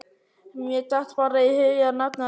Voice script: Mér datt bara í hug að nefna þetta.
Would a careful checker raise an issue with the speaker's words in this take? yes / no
no